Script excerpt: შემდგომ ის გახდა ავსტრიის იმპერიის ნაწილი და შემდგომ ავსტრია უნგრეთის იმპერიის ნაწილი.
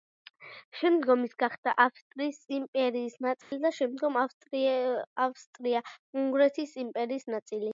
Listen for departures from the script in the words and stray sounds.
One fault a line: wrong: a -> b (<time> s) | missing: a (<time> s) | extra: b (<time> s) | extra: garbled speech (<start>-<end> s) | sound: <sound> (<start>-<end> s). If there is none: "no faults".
sound: dropout (3.4-3.5 s)